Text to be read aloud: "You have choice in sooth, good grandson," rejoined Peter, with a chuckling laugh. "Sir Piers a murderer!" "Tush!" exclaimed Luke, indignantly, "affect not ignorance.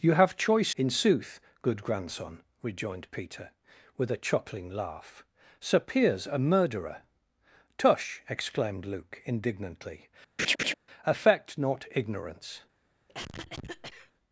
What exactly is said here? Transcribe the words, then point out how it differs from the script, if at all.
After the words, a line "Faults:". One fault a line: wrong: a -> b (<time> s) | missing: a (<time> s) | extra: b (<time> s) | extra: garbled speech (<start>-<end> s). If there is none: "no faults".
"You have choice in sooth, good grandson," rejoined Peter, with a chuckling laugh. "Sir Piers a murderer!" "Tush!" exclaimed Luke, indignantly, "affect not ignorance.
Faults:
no faults